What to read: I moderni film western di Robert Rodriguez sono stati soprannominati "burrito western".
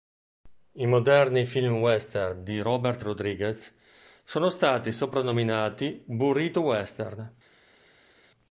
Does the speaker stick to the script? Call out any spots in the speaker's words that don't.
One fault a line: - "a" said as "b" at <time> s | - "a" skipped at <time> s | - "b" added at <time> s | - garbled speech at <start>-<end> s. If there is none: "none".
none